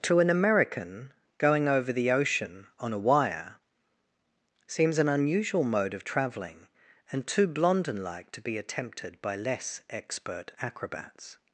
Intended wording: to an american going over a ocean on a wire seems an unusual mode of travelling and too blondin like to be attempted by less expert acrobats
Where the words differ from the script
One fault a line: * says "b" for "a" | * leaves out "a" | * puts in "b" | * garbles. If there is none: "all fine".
* says "the" for "a"